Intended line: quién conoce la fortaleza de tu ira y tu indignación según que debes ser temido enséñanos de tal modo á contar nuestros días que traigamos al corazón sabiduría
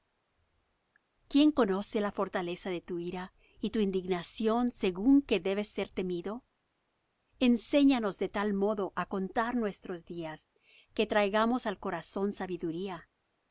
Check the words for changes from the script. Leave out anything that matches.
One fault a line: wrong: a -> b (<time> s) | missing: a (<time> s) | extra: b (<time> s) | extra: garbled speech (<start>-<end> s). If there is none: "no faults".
no faults